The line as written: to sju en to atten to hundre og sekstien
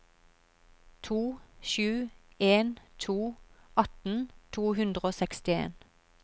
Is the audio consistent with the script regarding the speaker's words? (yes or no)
yes